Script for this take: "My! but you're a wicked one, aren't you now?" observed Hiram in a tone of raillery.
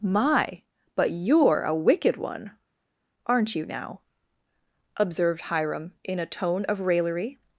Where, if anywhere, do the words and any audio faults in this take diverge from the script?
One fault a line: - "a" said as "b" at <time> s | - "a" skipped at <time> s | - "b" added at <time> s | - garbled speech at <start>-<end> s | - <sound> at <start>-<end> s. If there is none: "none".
none